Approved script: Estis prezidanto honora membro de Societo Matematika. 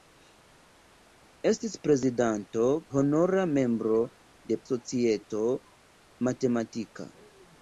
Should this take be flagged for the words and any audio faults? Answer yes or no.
no